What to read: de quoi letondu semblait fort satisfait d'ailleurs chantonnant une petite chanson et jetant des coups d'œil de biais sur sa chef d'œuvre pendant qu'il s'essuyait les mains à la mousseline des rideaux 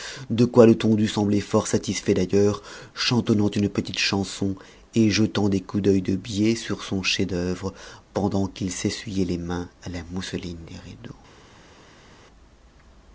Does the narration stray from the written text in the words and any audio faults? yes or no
yes